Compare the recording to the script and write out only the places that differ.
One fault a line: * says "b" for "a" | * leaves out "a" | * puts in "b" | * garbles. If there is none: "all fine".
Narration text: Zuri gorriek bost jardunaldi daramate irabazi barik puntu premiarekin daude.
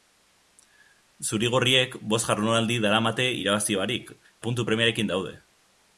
all fine